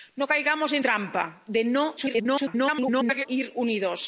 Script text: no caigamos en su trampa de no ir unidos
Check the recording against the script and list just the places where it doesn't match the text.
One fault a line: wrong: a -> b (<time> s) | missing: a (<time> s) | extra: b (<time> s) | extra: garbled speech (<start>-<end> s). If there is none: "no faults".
missing: su (0.8 s)
extra: garbled speech (2.0-3.3 s)